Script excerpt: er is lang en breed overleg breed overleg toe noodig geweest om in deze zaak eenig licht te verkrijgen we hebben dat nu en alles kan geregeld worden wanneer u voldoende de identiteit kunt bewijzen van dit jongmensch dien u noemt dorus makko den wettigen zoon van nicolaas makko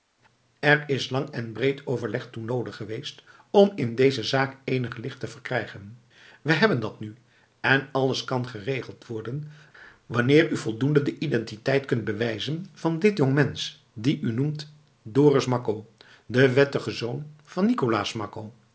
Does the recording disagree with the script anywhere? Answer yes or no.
yes